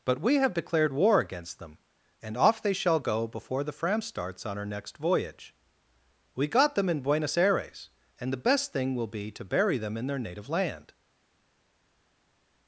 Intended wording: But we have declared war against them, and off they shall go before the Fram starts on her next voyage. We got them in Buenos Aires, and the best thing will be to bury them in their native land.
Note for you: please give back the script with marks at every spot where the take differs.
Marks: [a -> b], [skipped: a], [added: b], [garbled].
But we have declared war against them, and off they shall go before the Fram starts on her next voyage. We got them in Buenos Aires, and the best thing will be to bury them in their native land.